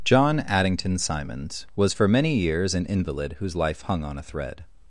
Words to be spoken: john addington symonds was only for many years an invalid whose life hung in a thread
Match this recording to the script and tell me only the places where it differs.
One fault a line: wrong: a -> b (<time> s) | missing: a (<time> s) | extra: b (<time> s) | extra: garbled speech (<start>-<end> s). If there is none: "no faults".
missing: only (1.9 s)
wrong: in -> on (4.0 s)